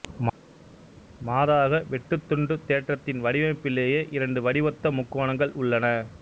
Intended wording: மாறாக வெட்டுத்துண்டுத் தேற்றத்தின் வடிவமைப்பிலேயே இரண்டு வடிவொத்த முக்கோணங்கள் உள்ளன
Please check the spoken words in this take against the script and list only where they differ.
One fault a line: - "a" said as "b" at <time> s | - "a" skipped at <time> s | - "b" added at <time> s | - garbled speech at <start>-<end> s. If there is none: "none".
none